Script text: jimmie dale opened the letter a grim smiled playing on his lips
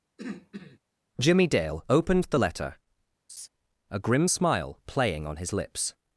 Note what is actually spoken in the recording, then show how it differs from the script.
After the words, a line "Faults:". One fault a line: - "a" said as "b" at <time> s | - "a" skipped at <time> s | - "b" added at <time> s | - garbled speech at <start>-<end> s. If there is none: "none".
jimmie dale opened the letter a grim smile playing on his lips
Faults:
- "smiled" said as "smile" at 4.3 s